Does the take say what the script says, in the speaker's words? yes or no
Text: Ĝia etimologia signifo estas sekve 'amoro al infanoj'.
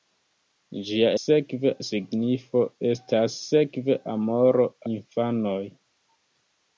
no